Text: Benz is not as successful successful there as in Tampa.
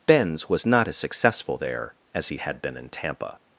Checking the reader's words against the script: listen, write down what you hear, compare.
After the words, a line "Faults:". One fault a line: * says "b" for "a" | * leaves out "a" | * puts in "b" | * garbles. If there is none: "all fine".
Benz was not as successful there as he had been in Tampa.
Faults:
* says "was" for "is"
* leaves out "successful"
* puts in "he had been"